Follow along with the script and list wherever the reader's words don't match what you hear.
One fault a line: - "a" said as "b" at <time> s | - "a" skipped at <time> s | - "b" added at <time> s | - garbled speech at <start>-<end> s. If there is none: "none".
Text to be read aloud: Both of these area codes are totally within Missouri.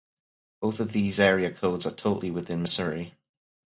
none